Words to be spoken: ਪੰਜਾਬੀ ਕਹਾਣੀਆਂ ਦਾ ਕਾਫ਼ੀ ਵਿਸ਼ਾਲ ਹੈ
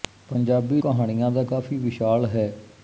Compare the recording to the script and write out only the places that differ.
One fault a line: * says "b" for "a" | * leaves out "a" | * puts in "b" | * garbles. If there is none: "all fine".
all fine